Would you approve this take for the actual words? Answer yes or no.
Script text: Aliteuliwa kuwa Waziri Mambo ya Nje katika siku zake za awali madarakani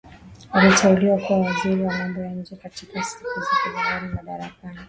no